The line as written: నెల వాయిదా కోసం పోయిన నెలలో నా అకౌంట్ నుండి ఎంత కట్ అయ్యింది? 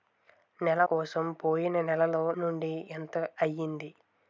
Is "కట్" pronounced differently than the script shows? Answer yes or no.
yes